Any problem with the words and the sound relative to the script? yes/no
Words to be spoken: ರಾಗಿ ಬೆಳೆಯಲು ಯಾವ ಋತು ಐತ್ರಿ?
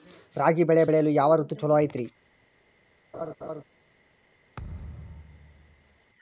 yes